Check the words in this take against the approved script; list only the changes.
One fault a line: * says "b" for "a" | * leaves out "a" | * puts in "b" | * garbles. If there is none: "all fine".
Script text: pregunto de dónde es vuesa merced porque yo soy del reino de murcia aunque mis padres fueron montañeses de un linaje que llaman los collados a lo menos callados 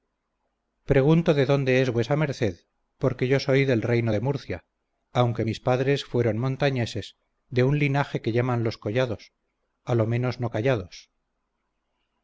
* puts in "no"